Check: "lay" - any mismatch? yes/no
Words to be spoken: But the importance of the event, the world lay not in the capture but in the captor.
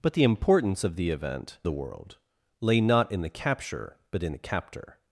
no